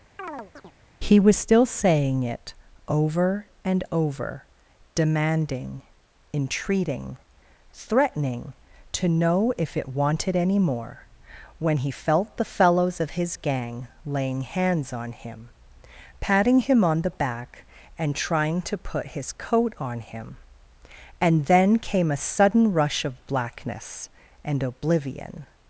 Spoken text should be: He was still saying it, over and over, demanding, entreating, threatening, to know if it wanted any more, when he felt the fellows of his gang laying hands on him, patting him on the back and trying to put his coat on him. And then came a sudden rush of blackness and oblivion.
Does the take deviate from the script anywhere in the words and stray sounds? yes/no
yes